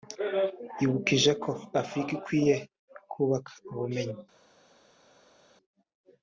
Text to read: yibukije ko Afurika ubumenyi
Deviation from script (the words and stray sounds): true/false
true